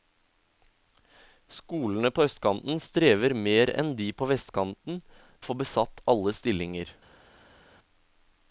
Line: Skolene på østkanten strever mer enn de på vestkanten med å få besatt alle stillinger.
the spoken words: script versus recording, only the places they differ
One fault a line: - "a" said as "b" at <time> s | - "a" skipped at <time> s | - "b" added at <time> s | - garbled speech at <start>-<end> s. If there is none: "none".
- "med" skipped at 5.0 s